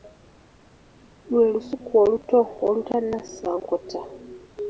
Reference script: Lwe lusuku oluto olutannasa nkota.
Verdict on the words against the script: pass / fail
pass